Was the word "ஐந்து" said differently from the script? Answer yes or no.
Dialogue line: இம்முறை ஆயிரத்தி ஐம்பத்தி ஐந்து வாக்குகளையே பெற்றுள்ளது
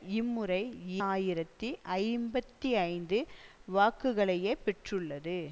no